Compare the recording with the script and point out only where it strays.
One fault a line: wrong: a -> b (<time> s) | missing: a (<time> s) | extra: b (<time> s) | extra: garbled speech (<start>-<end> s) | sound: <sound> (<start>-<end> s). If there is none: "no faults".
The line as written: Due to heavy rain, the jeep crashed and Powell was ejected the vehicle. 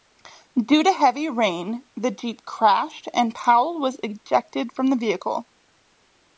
extra: from (4.7 s)